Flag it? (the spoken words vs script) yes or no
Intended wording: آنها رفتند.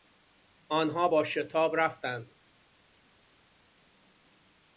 yes